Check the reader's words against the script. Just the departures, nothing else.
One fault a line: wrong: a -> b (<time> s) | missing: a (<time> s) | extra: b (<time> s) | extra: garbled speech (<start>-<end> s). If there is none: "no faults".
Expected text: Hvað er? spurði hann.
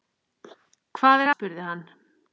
no faults